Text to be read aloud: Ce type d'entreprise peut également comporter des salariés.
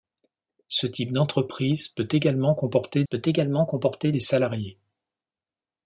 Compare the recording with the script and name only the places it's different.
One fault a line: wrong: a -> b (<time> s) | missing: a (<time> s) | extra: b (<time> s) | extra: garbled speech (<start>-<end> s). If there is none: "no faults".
extra: peut également comporter (3.0 s)